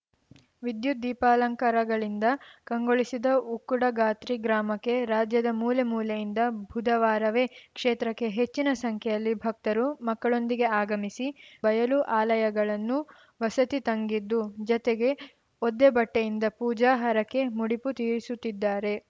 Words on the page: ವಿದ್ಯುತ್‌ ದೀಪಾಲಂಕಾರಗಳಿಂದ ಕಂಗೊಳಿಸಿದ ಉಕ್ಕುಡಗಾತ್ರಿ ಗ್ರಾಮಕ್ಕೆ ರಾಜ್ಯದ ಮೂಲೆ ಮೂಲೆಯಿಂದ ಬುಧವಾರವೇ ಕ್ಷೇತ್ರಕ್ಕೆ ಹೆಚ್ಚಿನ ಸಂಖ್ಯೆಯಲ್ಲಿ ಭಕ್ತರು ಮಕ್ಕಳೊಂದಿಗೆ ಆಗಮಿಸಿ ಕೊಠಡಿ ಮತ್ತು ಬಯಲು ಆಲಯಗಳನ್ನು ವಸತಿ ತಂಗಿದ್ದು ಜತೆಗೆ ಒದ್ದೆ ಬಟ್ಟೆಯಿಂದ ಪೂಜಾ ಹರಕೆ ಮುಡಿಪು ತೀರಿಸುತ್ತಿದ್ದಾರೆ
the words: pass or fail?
fail